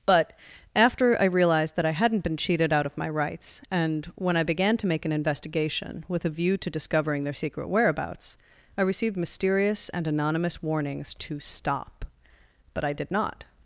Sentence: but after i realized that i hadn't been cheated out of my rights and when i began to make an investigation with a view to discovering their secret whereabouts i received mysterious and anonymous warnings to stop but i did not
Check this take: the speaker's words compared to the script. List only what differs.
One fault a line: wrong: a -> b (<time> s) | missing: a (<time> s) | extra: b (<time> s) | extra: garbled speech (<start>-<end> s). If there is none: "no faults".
no faults